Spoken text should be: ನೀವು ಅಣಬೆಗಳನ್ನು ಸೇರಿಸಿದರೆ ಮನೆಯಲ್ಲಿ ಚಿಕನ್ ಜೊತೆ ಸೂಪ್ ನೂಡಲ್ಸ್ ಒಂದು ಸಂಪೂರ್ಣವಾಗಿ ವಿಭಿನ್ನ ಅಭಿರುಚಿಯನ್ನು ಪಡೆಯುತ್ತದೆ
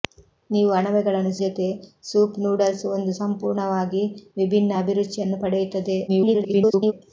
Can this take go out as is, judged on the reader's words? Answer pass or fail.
fail